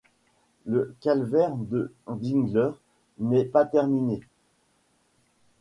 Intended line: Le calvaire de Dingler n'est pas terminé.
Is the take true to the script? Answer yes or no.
yes